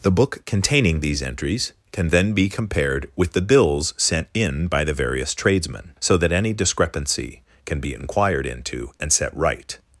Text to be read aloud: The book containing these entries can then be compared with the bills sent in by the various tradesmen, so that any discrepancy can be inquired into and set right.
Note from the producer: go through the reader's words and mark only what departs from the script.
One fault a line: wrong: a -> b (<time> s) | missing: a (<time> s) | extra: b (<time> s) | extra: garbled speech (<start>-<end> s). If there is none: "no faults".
no faults